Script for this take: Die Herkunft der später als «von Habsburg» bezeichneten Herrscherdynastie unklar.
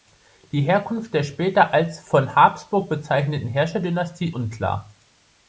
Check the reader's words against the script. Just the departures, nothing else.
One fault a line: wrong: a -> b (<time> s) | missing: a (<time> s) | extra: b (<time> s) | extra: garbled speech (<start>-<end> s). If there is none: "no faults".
no faults